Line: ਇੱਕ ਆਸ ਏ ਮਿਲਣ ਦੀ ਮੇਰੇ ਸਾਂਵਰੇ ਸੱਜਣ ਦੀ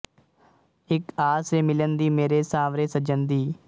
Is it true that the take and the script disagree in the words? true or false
false